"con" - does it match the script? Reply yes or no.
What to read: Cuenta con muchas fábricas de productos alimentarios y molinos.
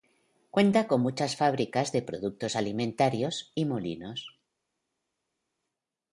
yes